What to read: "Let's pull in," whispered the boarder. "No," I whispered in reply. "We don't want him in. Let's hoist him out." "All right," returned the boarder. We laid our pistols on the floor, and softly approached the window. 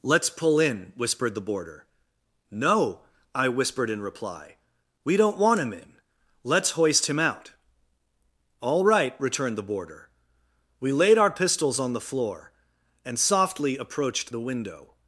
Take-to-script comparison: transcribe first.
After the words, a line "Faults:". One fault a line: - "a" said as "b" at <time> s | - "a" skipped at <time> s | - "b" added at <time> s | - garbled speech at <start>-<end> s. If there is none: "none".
"Let's pull in," whispered the boarder. "No," I whispered in reply. "We don't want him in. Let's hoist him out." "All right," returned the boarder. We laid our pistols on the floor, and softly approached the window.
Faults:
none